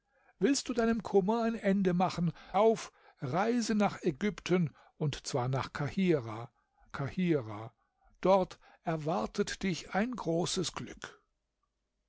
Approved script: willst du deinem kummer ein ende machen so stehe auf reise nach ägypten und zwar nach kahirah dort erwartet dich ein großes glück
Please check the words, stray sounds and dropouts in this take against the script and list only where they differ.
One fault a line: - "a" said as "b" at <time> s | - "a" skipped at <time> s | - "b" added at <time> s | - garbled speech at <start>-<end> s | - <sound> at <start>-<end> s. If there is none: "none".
- "so stehe" skipped at 2.3 s
- "kahirah" added at 6.9 s